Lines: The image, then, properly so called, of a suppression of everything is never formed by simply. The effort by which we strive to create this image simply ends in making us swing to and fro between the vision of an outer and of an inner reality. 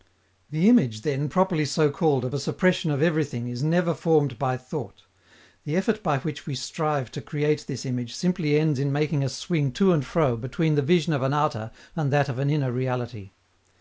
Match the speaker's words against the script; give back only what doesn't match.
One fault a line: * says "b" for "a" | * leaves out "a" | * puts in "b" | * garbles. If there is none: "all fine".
* says "thought" for "simply"
* puts in "that"